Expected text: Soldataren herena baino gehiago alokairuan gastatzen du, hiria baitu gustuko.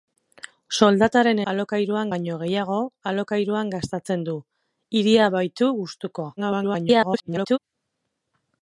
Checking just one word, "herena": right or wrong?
wrong